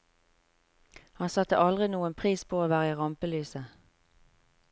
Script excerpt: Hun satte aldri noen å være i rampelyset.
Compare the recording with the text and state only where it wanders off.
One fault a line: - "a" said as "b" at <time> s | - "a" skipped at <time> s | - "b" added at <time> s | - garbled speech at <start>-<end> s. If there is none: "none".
- "Hun" said as "Han" at 1.2 s
- "pris på" added at 2.2 s